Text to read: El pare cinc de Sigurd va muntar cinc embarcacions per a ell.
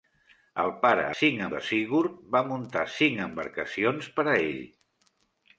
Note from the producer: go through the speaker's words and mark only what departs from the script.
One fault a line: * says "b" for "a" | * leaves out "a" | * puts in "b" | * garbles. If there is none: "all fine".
all fine